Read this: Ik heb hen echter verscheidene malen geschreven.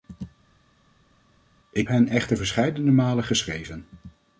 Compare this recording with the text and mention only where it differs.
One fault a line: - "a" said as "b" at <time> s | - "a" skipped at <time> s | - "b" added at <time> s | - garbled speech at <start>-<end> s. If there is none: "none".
- "heb" skipped at 1.9 s